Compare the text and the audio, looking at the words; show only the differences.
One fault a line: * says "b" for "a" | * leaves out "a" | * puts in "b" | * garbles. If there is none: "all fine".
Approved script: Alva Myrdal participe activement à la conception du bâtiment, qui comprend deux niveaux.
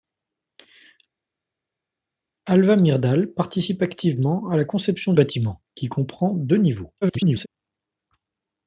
* leaves out "du"
* garbles